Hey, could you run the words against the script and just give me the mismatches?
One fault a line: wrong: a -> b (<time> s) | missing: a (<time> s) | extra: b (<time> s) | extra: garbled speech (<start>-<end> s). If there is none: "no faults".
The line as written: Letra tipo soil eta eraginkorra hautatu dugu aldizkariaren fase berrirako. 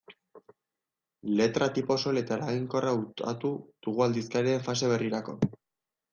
no faults